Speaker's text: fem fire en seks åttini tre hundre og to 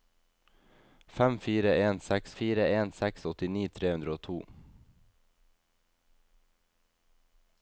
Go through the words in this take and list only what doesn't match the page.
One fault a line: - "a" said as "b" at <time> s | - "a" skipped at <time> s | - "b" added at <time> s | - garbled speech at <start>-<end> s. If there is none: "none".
- "fire en seks" added at 2.4 s